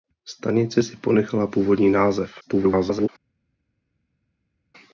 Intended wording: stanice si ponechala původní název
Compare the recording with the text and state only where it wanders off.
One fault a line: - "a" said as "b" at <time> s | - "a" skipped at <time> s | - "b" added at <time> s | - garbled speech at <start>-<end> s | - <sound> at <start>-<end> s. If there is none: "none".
- garbled speech at 2.4-3.1 s